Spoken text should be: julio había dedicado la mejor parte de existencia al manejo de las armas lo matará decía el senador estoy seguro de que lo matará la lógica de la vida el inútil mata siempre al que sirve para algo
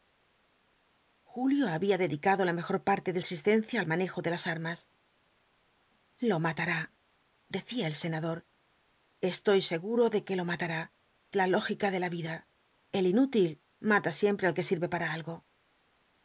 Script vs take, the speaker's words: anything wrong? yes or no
no